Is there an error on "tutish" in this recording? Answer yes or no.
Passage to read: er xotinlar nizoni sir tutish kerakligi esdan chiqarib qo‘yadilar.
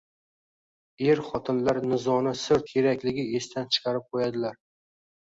yes